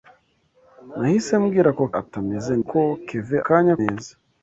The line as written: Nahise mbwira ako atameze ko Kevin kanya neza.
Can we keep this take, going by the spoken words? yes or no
yes